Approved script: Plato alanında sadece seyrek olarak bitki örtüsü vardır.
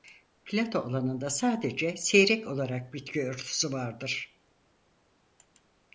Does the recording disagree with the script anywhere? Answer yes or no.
no